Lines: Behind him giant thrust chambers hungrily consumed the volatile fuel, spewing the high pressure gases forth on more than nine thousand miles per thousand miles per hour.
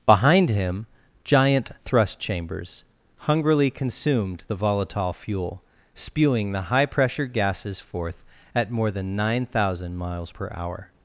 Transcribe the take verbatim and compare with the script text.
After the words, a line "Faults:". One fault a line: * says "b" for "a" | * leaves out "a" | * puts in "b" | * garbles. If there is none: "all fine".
Behind him giant thrust chambers hungrily consumed the volatile fuel, spewing the high pressure gases forth at more than nine thousand miles per hour.
Faults:
* says "at" for "on"
* leaves out "thousand miles per"